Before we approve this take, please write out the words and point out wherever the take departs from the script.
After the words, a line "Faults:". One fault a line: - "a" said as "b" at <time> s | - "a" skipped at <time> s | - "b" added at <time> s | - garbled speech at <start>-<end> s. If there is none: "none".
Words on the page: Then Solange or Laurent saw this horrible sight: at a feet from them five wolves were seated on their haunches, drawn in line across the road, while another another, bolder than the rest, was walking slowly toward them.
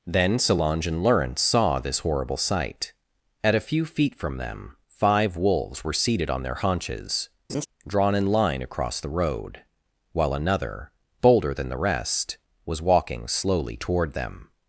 Then Solange and Laurent saw this horrible sight: at a few feet from them five wolves were seated on their haunches, drawn in line across the road, while another, bolder than the rest, was walking slowly toward them.
Faults:
- "or" said as "and" at 0.9 s
- "few" added at 3.7 s
- "another" skipped at 10.9 s